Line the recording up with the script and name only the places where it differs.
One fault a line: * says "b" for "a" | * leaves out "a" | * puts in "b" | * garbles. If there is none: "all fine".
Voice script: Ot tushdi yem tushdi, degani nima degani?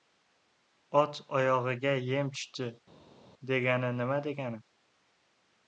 * says "oyog‘iga" for "tushdi"